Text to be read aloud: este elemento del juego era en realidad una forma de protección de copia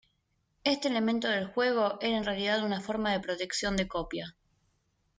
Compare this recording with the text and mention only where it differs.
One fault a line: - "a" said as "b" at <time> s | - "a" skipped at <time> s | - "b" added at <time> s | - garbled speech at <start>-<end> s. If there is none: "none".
none